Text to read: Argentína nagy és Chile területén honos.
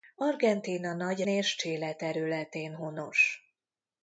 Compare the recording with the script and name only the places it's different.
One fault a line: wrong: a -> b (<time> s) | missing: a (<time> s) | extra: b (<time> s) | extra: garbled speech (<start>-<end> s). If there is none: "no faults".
no faults